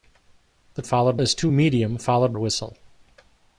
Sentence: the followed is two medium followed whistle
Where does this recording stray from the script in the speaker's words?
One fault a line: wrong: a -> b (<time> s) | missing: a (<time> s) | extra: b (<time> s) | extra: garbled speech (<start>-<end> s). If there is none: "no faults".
no faults